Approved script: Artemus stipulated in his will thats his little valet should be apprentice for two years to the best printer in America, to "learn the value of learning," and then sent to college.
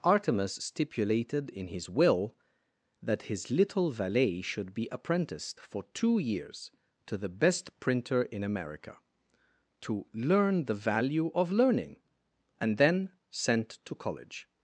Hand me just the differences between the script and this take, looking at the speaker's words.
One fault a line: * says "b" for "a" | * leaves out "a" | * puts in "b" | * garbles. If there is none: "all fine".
* says "that" for "thats"
* says "apprenticed" for "apprentice"